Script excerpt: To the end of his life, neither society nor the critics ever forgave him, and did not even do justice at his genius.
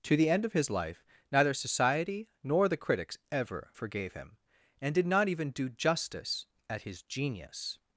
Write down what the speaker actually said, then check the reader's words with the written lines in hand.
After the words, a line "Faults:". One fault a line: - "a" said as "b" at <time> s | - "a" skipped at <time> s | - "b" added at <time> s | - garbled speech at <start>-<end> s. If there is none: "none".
To the end of his life, neither society nor the critics ever forgave him, and did not even do justice at his genius.
Faults:
none